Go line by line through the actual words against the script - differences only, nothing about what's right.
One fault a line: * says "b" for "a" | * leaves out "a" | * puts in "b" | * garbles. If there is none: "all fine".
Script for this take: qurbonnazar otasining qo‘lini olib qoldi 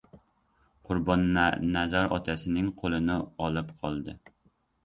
all fine